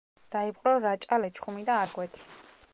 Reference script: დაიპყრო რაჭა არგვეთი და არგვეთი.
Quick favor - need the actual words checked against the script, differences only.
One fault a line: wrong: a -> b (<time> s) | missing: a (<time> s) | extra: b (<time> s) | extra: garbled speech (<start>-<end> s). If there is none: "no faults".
wrong: არგვეთი -> ლეჩხუმი (1.2 s)